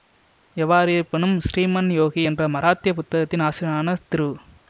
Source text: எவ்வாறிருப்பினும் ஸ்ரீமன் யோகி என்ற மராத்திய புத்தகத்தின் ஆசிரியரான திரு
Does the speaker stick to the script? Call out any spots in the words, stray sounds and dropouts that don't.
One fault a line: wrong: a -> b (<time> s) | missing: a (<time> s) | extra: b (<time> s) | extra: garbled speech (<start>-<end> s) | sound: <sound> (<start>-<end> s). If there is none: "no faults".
no faults